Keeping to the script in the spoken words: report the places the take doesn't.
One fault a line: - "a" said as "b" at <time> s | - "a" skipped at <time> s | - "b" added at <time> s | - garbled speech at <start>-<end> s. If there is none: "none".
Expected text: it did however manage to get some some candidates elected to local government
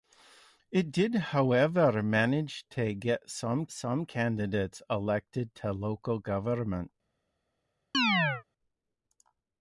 none